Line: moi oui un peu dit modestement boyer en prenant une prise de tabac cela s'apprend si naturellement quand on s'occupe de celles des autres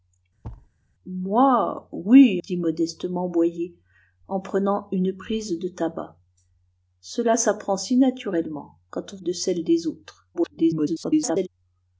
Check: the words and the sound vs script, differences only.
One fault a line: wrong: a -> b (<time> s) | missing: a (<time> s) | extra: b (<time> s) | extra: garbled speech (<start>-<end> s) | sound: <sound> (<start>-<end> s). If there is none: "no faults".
sound: thud (0.4-0.7 s)
missing: un peu (2.4 s)
missing: s'occupe (9.2 s)
extra: garbled speech (10.3-11.5 s)